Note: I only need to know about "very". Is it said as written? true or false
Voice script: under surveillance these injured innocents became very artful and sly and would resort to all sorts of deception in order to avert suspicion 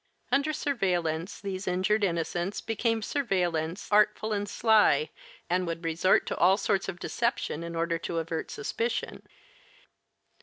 false